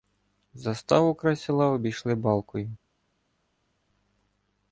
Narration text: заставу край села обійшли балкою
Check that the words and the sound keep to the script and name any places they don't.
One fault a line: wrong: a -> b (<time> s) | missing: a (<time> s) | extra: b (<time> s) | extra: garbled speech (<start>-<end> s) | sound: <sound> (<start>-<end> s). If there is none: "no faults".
no faults